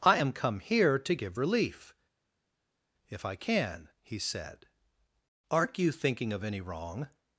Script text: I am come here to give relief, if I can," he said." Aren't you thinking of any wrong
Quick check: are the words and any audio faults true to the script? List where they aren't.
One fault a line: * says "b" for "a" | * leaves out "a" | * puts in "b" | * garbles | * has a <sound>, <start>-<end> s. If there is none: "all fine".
all fine